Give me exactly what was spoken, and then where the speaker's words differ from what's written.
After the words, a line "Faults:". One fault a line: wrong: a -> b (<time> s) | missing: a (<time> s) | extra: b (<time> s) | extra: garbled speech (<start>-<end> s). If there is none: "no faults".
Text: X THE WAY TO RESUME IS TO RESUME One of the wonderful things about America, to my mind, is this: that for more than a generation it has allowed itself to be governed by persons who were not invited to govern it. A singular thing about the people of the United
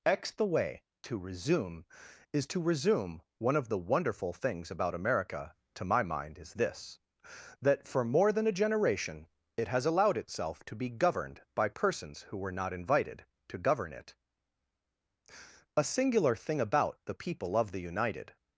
X THE WAY TO RESUME IS TO RESUME One of the wonderful things about America, to my mind, is this: that for more than a generation it has allowed itself to be governed by persons who were not invited to govern it. A singular thing about the people of the United
Faults:
no faults